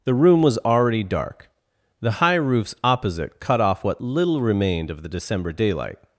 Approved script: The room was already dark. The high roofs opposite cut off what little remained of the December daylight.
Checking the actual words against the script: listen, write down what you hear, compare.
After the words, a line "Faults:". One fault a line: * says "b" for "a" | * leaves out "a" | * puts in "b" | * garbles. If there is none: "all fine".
The room was already dark. The high roofs opposite cut off what little remained of the December daylight.
Faults:
all fine